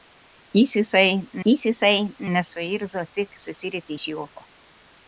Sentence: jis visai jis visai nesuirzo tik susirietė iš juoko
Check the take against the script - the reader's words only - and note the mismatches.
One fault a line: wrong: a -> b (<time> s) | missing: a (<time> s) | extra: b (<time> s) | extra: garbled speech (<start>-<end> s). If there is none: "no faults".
no faults